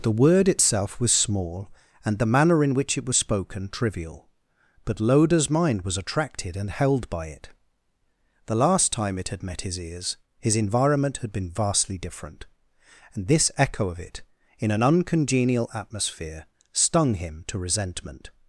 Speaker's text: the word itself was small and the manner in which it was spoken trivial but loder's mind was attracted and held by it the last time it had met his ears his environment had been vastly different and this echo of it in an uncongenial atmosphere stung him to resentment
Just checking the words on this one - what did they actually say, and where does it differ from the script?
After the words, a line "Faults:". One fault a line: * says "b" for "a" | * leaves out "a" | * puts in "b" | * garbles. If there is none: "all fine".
the word itself was small and the manner in which it was spoken trivial but loder's mind was attracted and held by it the last time it had met his ears his environment had been vastly different and this echo of it in an uncongenial atmosphere stung him to resentment
Faults:
all fine